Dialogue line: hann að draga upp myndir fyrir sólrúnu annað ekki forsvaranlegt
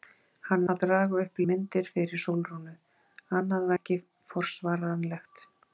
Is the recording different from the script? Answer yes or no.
no